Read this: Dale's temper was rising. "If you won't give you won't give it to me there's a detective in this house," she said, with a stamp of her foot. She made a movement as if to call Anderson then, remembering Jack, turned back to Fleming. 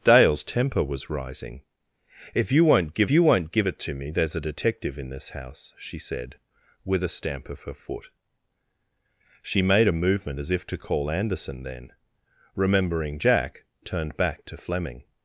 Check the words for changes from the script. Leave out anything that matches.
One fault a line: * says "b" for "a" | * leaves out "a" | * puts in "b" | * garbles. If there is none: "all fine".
all fine